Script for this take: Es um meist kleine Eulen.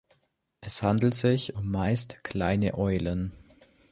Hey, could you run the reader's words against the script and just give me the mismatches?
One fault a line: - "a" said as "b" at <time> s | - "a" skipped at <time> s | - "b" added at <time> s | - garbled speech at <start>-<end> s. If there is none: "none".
- "handelt sich" added at 0.8 s